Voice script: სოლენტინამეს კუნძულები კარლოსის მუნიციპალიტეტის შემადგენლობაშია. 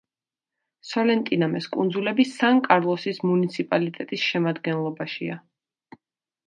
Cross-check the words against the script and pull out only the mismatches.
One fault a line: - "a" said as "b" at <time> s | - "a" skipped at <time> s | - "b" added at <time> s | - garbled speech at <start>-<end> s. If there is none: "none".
- "სან" added at 2.3 s